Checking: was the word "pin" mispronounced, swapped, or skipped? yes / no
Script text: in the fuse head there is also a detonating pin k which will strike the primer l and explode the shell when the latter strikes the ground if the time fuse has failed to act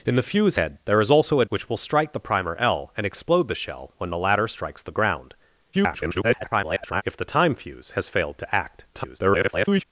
yes